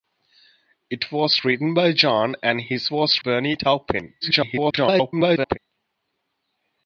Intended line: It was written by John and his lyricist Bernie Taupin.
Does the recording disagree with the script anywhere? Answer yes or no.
yes